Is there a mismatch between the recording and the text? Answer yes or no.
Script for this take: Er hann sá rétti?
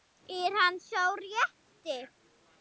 no